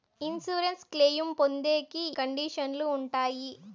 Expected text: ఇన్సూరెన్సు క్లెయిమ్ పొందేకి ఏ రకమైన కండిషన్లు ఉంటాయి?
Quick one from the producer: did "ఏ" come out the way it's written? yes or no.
no